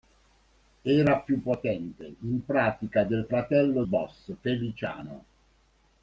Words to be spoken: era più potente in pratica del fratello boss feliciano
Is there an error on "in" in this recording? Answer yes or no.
no